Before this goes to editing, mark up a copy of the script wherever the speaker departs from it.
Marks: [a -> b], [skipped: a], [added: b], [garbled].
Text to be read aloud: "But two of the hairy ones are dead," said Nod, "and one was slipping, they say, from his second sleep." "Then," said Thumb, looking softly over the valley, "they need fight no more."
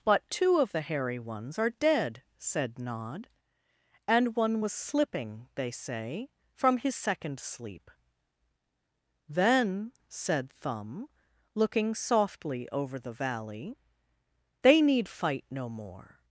"But two of the hairy ones are dead," said Nod, "and one was slipping, they say, from his second sleep." "Then," said Thumb, looking softly over the valley, "they need fight no more."